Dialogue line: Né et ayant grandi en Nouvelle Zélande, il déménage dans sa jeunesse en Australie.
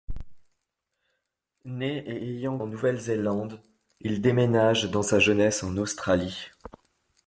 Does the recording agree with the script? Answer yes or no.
no